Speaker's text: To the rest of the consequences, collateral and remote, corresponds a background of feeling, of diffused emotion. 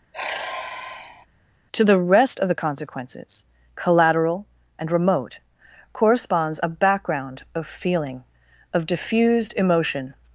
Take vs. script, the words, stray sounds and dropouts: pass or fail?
fail